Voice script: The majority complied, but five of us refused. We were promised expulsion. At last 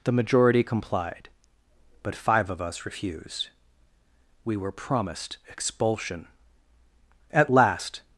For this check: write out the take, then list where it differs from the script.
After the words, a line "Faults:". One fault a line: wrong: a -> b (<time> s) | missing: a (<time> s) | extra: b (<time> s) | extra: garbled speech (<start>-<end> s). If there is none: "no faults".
The majority complied, but five of us refused. We were promised expulsion. At last
Faults:
no faults